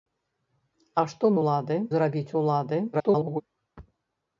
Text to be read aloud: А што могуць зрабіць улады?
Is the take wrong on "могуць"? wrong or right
wrong